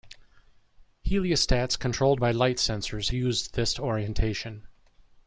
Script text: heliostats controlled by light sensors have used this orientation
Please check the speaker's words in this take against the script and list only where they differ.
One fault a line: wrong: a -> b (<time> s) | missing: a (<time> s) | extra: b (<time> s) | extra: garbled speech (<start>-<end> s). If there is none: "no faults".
missing: have (3.1 s)